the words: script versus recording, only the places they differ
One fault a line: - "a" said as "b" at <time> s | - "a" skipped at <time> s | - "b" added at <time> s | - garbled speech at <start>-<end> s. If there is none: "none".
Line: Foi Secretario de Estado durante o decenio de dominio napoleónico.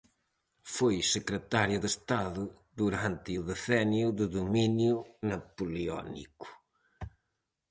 none